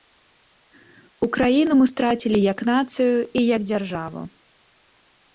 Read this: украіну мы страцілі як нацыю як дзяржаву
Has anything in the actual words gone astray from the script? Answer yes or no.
yes